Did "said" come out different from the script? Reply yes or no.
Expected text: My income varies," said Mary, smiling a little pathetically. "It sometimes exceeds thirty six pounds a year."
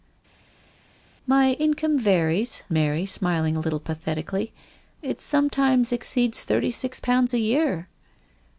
yes